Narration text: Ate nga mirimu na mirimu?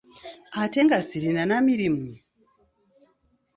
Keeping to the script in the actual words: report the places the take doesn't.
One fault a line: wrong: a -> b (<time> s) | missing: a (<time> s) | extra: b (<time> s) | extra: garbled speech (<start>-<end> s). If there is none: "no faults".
wrong: mirimu -> sirina (1.1 s)